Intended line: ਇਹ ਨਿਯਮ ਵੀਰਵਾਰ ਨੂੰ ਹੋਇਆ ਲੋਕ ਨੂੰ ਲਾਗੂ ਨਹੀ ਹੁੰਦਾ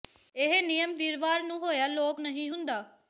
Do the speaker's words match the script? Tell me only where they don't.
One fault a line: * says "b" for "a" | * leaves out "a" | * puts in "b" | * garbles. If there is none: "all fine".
* leaves out "ਨੂੰ ਲਾਗੂ"